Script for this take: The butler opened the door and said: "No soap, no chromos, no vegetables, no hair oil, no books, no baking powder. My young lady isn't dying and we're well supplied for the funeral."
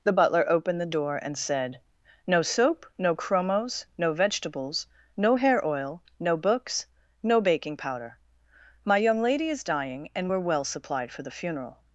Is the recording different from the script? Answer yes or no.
yes